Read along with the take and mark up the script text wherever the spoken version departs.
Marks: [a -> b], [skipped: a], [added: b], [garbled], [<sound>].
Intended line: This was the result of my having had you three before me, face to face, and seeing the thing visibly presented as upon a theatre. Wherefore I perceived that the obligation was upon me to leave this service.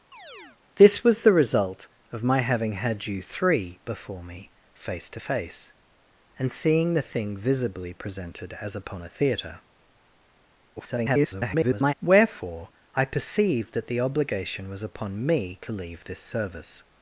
[chirp] This was the result of my having had you three before me, face to face, and seeing the thing visibly presented as upon a theatre. [garbled] Wherefore I perceived that the obligation was upon me to leave this service.